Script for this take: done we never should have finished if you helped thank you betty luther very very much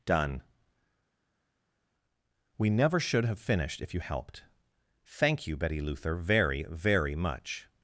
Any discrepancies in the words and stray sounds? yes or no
no